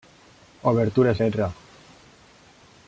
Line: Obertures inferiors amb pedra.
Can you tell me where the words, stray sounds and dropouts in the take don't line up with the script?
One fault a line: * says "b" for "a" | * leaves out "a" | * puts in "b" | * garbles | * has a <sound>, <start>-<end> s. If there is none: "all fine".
* leaves out "inferiors amb"